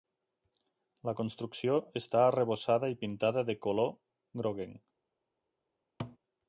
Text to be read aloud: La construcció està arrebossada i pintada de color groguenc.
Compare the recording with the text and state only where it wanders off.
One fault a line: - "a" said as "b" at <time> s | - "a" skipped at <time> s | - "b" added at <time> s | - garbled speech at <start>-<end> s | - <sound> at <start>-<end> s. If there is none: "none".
- thud at 6.0-6.2 s